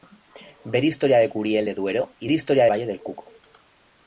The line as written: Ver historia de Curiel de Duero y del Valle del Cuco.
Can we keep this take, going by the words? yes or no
no